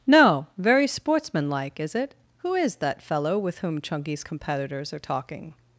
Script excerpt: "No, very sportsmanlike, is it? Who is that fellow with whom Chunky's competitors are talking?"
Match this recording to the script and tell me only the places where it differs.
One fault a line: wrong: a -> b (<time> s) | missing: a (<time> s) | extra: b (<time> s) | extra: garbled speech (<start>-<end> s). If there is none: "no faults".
no faults